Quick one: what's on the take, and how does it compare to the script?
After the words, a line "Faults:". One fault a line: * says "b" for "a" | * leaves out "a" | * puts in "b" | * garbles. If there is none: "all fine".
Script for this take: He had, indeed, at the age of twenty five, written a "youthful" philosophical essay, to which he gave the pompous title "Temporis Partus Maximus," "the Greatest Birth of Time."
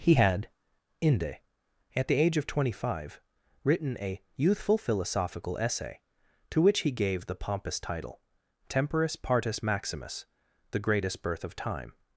He had, inde, at the age of twenty five, written a "youthful" philosophical essay, to which he gave the pompous title "Temporis Partus Maximus," "the Greatest Birth of Time."
Faults:
* says "inde" for "indeed"